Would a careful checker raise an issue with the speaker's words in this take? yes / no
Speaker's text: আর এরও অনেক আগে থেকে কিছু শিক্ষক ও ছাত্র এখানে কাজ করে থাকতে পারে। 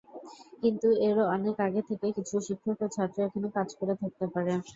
yes